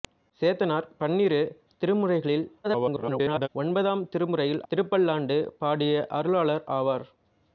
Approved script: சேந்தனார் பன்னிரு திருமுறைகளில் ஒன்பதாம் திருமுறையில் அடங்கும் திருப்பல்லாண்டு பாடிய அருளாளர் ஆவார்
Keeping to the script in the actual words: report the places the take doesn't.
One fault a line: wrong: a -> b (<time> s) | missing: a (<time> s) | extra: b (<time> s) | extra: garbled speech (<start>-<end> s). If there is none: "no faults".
extra: garbled speech (2.6-3.5 s)
missing: அடங்கும் (4.6 s)